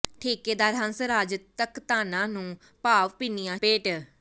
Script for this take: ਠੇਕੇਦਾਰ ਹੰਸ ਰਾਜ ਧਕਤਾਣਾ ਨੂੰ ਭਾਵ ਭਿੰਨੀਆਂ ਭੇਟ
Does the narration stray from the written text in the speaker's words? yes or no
no